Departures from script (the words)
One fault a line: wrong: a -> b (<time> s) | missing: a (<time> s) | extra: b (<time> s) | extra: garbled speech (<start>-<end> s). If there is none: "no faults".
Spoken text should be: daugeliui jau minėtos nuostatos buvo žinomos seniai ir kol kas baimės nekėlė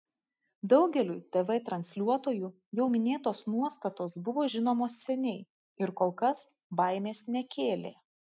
extra: tv transliuotojų (1.4 s)